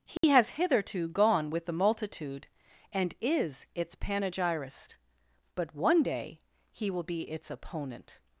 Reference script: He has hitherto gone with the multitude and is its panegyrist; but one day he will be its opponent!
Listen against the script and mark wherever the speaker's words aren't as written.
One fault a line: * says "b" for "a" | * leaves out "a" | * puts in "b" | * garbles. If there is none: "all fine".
all fine